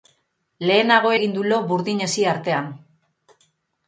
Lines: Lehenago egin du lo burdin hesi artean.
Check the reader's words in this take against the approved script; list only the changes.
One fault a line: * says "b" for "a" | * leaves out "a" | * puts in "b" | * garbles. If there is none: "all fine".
all fine